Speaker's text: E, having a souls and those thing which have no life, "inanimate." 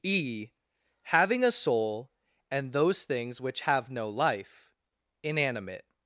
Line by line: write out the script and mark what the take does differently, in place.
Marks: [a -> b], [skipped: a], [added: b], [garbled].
E, having a [souls -> soul] and those [thing -> things] which have no life, "inanimate."